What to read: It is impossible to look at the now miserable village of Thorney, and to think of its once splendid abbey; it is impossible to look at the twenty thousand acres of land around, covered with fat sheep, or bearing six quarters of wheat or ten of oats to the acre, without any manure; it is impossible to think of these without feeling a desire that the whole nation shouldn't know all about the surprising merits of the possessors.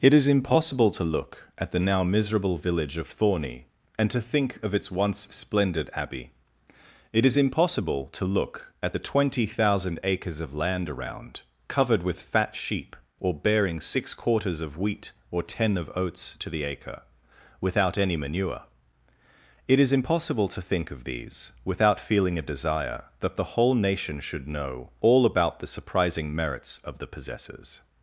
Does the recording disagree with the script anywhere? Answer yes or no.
yes